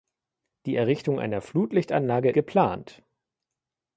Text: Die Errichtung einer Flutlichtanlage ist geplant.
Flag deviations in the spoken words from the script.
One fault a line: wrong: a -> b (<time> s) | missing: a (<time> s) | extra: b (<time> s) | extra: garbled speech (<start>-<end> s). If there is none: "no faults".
missing: ist (2.3 s)